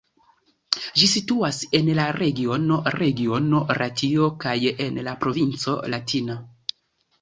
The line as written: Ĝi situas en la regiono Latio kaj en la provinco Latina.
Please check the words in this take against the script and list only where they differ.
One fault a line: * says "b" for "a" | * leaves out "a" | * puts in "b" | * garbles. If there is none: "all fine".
* puts in "regiono"